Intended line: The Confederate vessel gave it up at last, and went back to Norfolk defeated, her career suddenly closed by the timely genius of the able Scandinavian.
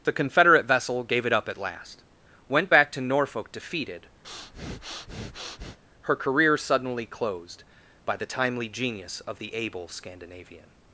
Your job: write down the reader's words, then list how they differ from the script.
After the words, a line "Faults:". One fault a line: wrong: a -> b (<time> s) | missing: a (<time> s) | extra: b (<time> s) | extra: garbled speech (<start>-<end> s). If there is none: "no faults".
The Confederate vessel gave it up at last, went back to Norfolk defeated, her career suddenly closed by the timely genius of the able Scandinavian.
Faults:
missing: and (2.0 s)